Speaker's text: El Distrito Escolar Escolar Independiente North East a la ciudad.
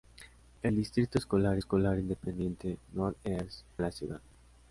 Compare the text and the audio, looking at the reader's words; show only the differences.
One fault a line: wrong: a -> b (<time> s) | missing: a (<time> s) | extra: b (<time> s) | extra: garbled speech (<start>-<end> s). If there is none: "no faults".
no faults